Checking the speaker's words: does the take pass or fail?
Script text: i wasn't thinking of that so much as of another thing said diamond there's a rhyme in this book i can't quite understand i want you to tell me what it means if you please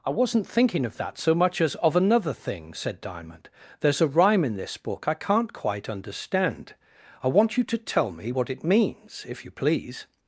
pass